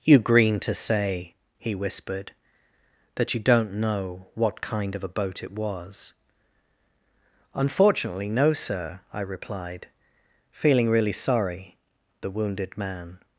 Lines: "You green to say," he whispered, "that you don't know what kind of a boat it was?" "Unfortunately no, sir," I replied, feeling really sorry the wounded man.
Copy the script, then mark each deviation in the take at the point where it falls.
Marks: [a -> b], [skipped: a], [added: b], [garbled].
"You green to say," he whispered, "that you don't know what kind of a boat it was?" "Unfortunately no, sir," I replied, feeling really sorry the wounded man.